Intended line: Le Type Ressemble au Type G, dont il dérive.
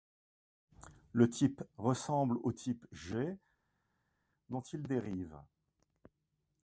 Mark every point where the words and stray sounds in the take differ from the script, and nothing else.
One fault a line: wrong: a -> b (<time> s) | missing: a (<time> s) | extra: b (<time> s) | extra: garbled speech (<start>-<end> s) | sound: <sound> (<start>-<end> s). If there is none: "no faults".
no faults